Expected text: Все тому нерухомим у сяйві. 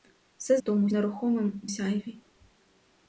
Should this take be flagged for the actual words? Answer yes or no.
no